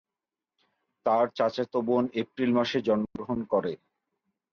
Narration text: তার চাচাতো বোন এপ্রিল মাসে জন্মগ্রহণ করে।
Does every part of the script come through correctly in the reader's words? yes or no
yes